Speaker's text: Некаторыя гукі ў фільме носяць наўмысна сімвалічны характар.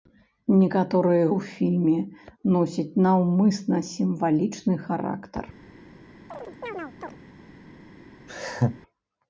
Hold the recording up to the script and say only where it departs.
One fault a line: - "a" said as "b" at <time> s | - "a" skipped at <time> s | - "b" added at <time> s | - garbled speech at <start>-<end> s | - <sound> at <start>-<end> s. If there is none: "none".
- "гукі" skipped at 1.3 s
- chirp at 6.3-7.2 s
- laugh at 8.3-8.8 s